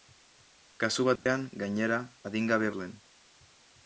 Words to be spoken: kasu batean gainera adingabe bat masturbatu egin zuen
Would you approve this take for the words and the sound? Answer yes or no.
no